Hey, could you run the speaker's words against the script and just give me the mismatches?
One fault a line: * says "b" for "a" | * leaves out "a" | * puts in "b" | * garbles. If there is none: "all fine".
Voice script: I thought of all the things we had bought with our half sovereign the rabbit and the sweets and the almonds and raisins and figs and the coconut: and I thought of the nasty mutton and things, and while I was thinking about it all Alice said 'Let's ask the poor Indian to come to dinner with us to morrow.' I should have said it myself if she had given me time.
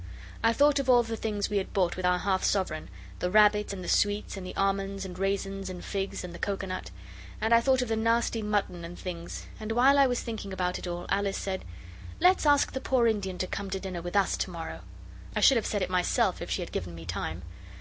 all fine